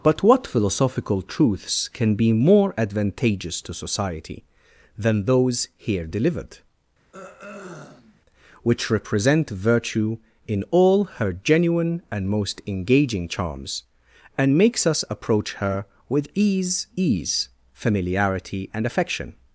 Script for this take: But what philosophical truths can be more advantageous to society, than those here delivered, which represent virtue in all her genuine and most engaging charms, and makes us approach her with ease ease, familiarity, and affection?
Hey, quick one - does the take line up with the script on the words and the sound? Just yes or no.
no